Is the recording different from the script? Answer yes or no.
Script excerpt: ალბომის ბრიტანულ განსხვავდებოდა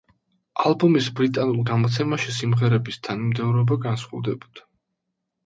yes